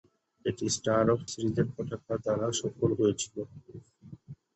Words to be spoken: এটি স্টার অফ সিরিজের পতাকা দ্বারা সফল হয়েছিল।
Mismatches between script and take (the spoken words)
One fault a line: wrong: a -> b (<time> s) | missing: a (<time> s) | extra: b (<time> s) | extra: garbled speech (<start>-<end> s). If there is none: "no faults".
no faults